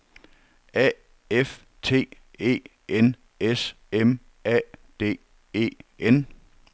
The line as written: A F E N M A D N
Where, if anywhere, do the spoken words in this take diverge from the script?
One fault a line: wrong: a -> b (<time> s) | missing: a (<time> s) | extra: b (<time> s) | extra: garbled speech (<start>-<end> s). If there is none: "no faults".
extra: T (1.8 s)
extra: S (3.4 s)
extra: E (5.5 s)